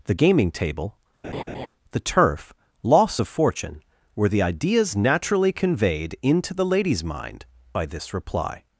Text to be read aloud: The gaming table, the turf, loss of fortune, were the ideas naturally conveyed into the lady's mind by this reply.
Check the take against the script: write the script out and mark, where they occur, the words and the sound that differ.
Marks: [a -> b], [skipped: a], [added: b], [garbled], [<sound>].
The gaming table, [laugh] the turf, loss of fortune, were the ideas naturally conveyed into the lady's mind by this reply.